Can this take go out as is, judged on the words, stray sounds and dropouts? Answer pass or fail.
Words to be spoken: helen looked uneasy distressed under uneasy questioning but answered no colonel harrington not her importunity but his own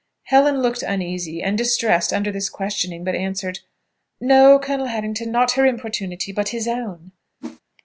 fail